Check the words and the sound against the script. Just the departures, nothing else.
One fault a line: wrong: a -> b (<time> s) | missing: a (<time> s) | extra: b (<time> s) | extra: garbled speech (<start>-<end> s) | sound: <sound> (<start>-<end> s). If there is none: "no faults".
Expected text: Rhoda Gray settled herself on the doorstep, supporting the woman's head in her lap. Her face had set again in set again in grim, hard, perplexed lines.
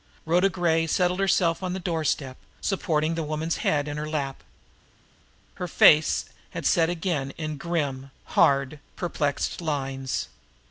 missing: set again in (7.6 s)